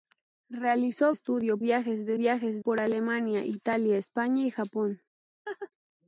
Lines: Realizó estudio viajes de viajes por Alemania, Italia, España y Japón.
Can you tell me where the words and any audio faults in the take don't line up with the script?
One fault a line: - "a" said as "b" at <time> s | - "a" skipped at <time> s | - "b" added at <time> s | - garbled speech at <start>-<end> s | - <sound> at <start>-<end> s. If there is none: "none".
- laugh at 5.5-5.7 s